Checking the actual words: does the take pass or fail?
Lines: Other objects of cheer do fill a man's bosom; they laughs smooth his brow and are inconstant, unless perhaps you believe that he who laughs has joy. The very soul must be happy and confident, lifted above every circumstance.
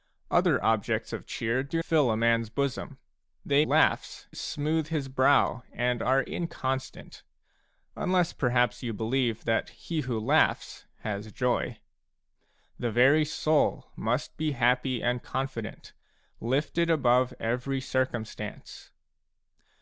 pass